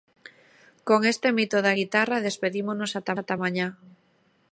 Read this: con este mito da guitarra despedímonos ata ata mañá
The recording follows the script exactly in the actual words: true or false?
true